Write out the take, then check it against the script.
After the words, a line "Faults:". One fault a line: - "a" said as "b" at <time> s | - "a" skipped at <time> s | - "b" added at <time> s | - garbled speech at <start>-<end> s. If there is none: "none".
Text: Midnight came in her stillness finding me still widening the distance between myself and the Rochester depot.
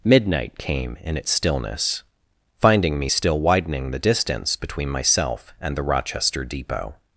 Midnight came in its stillness finding me still widening the distance between myself and the Rochester depot.
Faults:
- "her" said as "its" at 1.1 s